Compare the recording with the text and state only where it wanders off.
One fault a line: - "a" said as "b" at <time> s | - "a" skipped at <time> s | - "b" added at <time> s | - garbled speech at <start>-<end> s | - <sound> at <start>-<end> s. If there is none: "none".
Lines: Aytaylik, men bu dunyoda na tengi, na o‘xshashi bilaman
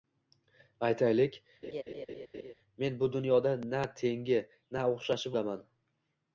- laugh at 1.6-2.5 s